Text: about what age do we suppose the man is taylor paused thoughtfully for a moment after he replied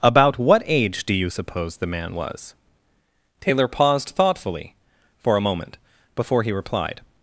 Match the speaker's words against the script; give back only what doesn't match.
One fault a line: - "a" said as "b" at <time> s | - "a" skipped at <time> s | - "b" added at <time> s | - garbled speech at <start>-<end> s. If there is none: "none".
- "we" said as "you" at 1.1 s
- "is" said as "was" at 2.1 s
- "after" said as "before" at 6.2 s